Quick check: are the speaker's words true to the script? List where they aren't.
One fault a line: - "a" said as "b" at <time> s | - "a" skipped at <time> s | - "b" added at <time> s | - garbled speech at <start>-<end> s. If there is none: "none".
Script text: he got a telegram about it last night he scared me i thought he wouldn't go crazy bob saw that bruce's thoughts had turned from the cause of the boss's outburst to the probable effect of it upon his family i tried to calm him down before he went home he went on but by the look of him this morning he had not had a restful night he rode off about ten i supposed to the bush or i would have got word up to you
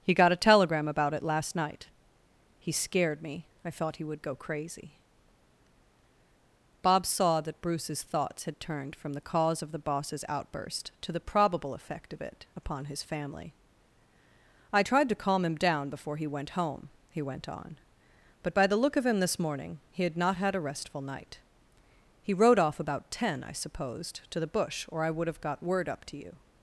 - "wouldn't" said as "would" at 4.0 s